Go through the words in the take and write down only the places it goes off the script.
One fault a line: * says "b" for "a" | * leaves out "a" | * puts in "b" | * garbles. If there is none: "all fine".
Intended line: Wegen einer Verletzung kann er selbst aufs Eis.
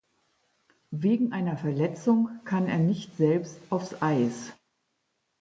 * puts in "nicht"